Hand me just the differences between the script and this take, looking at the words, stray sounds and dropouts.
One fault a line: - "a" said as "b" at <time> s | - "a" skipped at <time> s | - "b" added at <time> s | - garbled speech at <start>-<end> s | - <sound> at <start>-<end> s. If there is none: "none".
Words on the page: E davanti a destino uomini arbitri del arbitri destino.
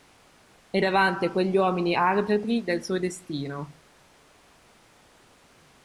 - "destino" said as "quegli" at 1.3 s
- "arbitri" said as "suo" at 2.8 s